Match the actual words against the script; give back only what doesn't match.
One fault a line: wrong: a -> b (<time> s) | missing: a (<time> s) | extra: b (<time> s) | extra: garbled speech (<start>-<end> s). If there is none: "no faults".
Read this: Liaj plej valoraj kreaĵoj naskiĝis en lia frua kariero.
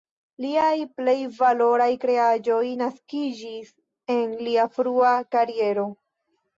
no faults